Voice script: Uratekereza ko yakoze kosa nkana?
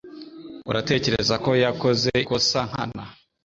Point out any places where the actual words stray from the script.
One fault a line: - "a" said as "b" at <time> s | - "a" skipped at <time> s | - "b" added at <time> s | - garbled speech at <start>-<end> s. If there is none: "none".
none